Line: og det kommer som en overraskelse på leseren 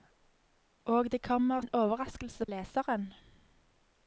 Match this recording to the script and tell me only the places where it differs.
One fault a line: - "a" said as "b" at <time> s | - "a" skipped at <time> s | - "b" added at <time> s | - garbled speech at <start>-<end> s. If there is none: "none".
- "som" skipped at 1.6 s
- "på" skipped at 2.5 s